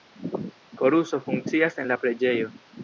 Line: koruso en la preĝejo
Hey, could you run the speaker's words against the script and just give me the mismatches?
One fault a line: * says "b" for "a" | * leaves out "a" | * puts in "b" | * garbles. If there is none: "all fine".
* puts in "funkcias"